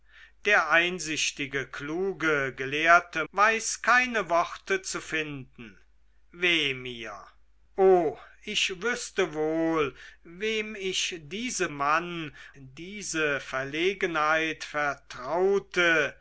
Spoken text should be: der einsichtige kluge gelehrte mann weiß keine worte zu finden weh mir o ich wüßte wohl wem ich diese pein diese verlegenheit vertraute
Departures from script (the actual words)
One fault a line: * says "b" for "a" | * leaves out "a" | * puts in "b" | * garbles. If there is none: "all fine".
* leaves out "mann"
* says "mann" for "pein"